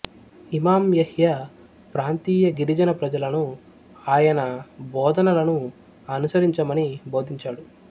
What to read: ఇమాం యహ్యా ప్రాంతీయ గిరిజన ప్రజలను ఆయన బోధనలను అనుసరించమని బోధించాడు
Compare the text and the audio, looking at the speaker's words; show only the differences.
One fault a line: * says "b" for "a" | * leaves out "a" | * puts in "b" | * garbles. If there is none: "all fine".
all fine